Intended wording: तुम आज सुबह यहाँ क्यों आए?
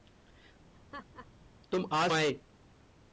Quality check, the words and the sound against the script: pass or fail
fail